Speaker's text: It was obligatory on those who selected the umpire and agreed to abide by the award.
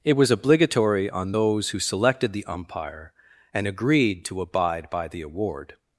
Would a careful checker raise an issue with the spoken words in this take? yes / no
no